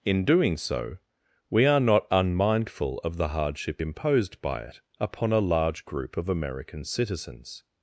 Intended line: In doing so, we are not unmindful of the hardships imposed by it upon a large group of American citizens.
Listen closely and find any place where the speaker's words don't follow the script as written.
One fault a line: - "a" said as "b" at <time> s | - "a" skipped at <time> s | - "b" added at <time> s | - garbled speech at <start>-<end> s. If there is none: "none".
- "hardships" said as "hardship" at 3.3 s